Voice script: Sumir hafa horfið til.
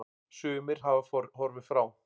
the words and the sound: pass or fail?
fail